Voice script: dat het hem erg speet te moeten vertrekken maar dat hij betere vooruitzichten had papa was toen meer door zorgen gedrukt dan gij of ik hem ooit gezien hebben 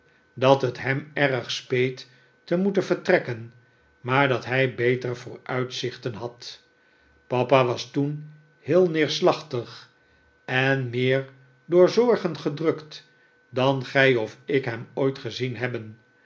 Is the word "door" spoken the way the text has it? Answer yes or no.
yes